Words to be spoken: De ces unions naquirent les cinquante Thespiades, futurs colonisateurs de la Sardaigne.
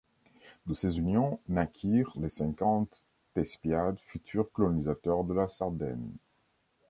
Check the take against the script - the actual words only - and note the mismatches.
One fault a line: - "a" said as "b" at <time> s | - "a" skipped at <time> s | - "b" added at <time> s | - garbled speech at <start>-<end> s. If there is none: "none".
none